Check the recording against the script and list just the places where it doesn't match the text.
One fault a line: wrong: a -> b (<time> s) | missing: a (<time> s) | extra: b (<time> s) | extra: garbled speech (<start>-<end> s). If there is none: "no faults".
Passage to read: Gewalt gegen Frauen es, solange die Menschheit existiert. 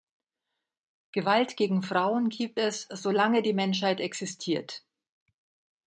extra: gibt (2.3 s)